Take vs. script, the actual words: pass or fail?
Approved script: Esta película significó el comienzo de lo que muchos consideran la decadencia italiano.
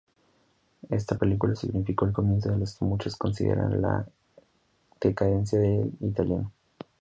fail